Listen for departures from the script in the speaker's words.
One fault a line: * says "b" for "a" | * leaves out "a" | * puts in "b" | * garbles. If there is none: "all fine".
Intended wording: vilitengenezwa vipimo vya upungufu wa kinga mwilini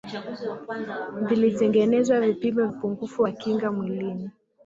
* leaves out "vya"